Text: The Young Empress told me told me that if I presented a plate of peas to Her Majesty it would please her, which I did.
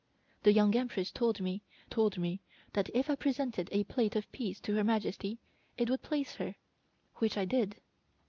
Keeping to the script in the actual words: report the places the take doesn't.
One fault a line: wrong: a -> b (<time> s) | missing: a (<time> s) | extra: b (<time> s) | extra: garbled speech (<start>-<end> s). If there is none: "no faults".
no faults